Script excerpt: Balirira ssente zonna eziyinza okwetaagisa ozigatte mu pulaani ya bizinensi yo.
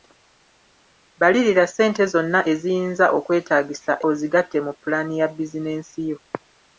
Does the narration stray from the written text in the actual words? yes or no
no